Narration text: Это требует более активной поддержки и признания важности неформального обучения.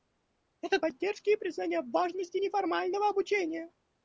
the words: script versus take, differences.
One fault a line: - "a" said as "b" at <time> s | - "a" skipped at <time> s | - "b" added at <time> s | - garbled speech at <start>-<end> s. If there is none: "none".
- "требует более активной" skipped at 0.8 s